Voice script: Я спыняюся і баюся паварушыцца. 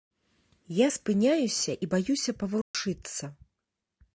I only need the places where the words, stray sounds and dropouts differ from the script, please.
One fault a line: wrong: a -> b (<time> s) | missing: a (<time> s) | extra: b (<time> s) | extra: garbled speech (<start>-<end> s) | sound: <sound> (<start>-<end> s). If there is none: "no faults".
sound: dropout (2.6-2.7 s)